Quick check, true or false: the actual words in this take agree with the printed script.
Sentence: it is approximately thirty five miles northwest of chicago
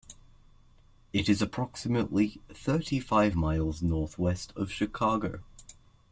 true